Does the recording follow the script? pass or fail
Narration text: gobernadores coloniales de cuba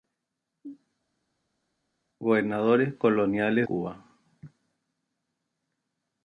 fail